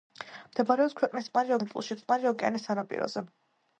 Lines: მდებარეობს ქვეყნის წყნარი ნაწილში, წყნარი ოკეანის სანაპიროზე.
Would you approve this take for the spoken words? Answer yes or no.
yes